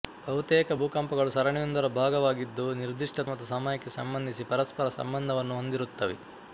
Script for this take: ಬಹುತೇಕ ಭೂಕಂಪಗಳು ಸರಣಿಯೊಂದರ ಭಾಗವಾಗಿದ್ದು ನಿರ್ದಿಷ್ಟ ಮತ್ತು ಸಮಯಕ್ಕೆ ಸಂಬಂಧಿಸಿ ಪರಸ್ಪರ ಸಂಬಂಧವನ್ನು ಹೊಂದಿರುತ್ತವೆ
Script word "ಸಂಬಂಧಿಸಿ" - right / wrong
right